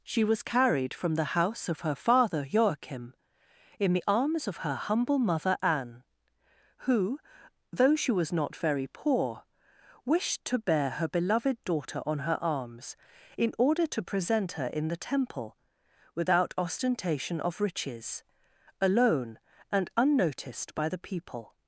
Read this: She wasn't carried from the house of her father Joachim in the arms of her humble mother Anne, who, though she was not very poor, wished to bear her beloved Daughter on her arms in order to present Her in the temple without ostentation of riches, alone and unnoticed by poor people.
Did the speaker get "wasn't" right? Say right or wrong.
wrong